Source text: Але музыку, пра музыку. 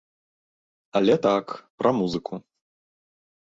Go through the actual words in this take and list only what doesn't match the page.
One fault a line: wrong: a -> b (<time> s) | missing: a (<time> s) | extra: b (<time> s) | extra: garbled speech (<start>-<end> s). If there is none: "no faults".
wrong: музыку -> так (1.2 s)